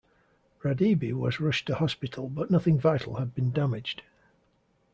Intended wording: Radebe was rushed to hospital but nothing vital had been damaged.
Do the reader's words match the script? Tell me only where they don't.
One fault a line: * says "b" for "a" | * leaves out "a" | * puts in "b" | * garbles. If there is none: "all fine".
all fine